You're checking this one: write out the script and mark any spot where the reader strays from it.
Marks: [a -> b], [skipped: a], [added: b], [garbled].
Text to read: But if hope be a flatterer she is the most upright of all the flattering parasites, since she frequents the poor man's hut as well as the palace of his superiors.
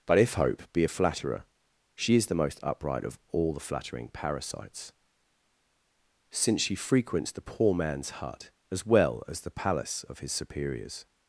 But if hope be a flatterer she is the most upright of all the flattering parasites, since she frequents the poor man's hut as well as the palace of his superiors.